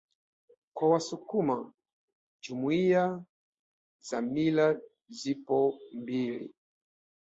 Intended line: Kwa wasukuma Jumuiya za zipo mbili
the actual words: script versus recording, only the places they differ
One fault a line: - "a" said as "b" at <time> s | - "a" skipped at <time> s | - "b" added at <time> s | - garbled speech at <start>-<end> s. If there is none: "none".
- "mila" added at 4.2 s